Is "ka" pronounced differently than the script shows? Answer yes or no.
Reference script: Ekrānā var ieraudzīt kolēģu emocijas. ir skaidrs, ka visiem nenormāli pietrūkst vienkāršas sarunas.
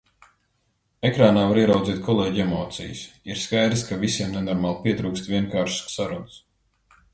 no